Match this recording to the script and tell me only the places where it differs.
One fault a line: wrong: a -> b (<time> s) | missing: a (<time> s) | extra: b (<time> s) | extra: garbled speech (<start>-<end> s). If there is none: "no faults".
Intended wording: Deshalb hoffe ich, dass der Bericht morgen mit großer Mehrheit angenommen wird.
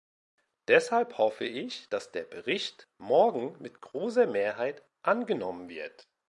no faults